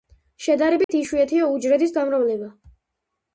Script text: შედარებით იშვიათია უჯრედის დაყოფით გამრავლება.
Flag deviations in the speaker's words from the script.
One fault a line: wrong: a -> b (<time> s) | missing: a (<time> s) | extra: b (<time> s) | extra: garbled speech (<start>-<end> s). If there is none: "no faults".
missing: დაყოფით (1.9 s)